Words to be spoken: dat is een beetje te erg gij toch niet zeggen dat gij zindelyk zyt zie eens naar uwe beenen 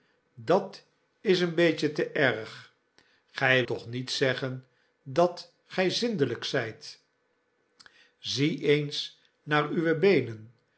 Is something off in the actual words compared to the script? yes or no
no